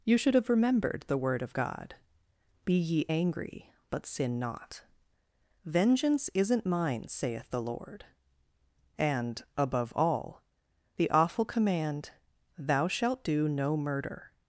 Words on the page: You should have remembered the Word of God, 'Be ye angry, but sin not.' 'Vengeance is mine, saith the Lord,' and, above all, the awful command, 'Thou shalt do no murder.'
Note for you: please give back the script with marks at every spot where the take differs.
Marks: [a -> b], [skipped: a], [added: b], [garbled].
You should have remembered the Word of God, 'Be ye angry, but sin not.' 'Vengeance [is -> isn't] mine, saith the Lord,' and, above all, the awful command, 'Thou shalt do no murder.'